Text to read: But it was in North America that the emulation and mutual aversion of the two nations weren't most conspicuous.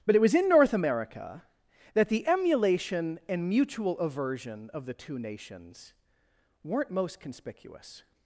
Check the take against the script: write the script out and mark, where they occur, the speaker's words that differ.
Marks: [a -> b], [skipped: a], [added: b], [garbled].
But it was in North America that the emulation and mutual aversion of the two nations weren't most conspicuous.